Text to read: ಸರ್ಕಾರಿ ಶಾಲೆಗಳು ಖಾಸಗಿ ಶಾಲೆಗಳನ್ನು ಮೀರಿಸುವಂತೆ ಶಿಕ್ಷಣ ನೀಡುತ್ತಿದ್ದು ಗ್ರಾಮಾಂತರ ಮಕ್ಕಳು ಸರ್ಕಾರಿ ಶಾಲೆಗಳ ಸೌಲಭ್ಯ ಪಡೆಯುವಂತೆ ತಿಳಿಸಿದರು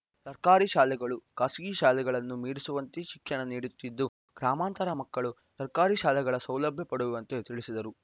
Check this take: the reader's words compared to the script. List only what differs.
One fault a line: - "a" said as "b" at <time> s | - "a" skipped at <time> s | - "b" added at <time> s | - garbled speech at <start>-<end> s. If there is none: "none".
none